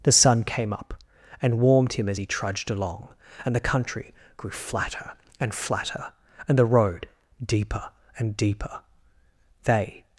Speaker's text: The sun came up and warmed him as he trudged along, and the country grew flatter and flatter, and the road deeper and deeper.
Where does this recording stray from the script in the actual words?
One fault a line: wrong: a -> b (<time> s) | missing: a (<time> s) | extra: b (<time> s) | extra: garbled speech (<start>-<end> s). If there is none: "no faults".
extra: They (9.6 s)